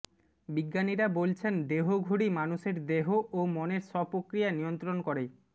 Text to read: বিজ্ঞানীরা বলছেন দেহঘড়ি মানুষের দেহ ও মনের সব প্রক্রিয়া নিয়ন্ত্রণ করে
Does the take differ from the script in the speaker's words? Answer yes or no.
no